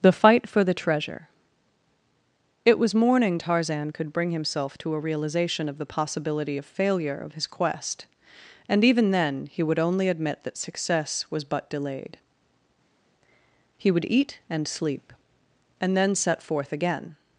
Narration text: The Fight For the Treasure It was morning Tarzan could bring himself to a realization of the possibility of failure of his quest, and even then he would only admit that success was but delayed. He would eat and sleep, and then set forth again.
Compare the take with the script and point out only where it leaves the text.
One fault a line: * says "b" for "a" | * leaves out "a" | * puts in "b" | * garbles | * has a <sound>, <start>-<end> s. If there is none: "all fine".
all fine